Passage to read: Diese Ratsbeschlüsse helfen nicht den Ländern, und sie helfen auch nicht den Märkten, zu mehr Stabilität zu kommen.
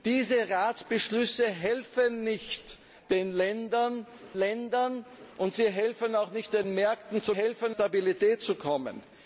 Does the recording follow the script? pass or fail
fail